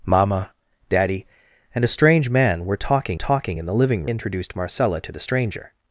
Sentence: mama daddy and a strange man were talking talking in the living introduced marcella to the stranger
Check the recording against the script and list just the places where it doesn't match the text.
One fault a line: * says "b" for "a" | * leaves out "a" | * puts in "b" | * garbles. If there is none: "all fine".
all fine